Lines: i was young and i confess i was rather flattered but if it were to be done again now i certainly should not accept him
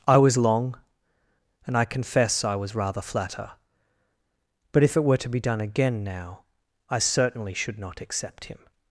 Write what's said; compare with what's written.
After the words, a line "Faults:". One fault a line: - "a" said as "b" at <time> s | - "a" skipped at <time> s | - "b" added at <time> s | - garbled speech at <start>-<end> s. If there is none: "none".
i was long and i confess i was rather flatter but if it were to be done again now i certainly should not accept him
Faults:
- "young" said as "long" at 0.4 s
- "flattered" said as "flatter" at 3.0 s